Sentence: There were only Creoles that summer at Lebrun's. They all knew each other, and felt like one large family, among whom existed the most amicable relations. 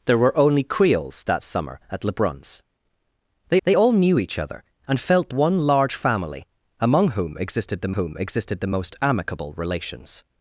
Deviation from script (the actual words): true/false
true